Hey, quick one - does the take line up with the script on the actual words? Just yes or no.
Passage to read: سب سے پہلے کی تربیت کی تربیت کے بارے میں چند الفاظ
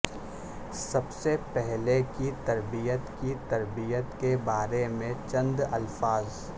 yes